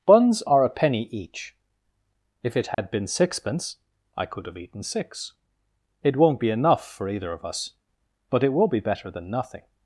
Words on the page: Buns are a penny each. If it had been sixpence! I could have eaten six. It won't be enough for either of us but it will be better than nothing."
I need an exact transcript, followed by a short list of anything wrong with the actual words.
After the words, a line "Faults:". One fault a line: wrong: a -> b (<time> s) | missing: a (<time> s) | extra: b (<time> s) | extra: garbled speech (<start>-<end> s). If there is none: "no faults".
Buns are a penny each. If it had been sixpence! I could have eaten six. It won't be enough for either of us but it will be better than nothing."
Faults:
no faults